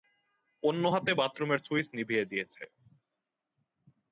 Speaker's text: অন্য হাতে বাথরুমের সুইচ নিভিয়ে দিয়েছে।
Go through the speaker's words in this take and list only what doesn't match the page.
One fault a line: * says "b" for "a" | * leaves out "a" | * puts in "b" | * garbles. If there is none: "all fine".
all fine